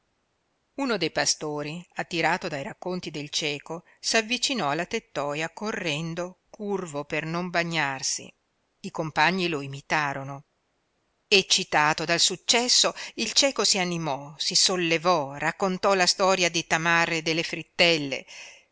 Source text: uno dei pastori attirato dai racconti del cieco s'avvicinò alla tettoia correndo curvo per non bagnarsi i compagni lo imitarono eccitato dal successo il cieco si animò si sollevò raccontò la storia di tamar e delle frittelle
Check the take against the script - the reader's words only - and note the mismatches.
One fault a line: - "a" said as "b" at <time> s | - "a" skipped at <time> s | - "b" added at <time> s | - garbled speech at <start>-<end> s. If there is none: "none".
none